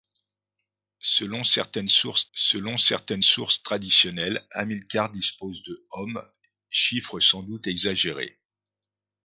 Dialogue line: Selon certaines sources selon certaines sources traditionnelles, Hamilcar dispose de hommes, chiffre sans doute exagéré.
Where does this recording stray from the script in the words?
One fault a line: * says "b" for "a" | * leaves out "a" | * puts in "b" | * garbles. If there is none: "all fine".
all fine